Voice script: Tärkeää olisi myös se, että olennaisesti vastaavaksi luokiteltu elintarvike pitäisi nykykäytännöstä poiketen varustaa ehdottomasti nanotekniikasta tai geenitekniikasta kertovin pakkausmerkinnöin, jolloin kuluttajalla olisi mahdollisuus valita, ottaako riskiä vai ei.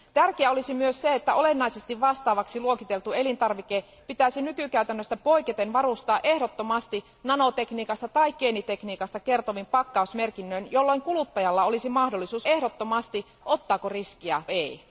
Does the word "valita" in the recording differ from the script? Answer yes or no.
yes